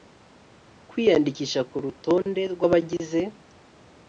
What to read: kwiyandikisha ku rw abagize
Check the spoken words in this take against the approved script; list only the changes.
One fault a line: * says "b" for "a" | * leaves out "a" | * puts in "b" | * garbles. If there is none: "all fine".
* puts in "rutonde"